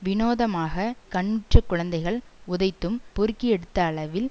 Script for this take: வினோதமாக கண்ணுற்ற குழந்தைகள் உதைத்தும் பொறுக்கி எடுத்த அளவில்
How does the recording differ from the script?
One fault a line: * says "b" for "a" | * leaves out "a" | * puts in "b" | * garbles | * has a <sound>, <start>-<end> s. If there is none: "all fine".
all fine